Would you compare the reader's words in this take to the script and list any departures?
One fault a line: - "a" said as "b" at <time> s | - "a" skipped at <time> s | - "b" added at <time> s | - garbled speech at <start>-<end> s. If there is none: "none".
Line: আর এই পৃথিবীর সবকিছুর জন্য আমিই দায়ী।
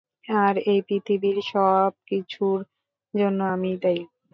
none